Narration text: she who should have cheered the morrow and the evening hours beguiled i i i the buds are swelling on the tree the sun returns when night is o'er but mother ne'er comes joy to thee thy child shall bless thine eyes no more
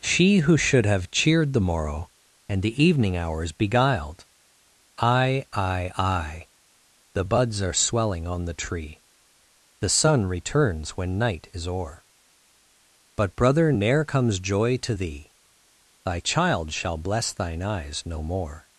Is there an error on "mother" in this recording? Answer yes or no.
yes